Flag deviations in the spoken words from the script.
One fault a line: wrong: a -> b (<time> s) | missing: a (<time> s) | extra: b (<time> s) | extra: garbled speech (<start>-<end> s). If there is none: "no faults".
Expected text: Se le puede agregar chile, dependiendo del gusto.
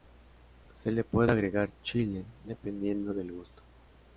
no faults